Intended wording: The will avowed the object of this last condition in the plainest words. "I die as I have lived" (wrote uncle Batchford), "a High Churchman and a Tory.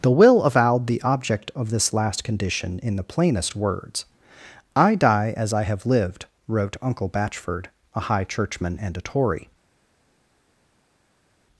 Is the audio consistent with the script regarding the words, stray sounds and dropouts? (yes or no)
yes